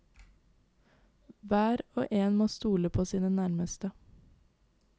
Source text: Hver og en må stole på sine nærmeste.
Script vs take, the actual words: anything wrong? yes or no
no